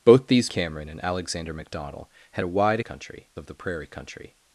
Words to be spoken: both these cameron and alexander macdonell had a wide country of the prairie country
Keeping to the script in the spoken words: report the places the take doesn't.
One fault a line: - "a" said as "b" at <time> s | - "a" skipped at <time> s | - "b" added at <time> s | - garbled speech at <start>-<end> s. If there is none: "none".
none